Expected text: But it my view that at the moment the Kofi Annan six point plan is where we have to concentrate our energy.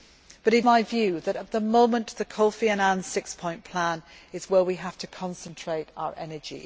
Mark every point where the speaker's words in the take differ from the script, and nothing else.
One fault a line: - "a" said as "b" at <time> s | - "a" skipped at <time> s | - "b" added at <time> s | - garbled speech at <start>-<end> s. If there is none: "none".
none